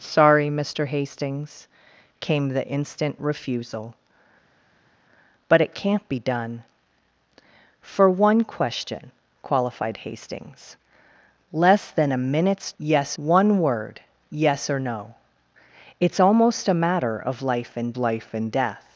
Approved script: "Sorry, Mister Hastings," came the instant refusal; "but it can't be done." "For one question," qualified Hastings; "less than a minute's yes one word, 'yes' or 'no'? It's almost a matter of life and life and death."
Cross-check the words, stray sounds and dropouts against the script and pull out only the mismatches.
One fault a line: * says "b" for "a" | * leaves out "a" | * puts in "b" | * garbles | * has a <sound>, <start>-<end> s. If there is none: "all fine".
all fine